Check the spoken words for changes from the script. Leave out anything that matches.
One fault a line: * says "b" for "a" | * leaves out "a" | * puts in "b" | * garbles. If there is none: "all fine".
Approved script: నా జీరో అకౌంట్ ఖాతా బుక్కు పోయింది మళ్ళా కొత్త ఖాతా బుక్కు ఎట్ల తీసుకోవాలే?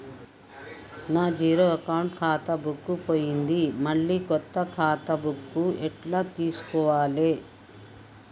all fine